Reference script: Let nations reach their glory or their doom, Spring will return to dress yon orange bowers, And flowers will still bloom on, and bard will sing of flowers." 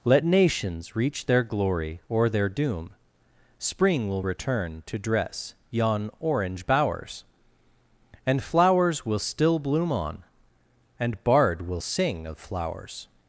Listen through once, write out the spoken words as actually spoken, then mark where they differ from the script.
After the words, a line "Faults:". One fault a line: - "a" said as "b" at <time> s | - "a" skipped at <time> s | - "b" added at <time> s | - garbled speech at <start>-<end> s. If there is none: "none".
Let nations reach their glory or their doom, Spring will return to dress yon orange bowers, And flowers will still bloom on, and bard will sing of flowers."
Faults:
none